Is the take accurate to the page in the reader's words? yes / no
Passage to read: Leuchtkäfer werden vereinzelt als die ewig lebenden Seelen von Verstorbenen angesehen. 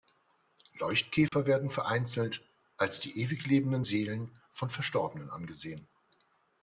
yes